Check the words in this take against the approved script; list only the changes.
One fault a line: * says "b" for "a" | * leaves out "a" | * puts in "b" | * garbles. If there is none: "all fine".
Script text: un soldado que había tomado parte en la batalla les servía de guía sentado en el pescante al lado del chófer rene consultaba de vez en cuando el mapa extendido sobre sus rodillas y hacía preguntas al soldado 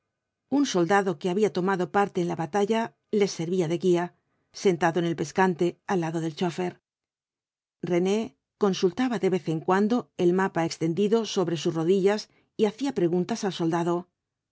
all fine